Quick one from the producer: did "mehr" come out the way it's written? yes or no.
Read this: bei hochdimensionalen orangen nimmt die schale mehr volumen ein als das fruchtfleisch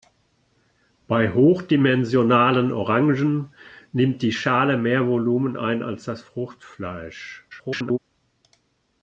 yes